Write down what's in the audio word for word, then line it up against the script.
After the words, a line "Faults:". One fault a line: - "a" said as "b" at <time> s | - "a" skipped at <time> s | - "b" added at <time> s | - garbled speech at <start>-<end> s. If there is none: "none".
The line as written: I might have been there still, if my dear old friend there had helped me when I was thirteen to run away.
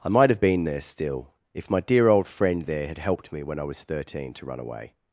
I might have been there still, if my dear old friend there had helped me when I was thirteen to run away.
Faults:
none